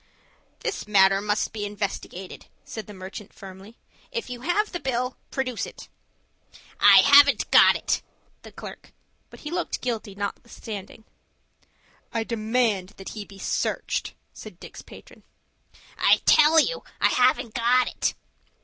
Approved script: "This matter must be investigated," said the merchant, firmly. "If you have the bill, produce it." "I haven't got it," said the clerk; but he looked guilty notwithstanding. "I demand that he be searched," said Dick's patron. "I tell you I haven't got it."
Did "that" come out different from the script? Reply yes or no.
no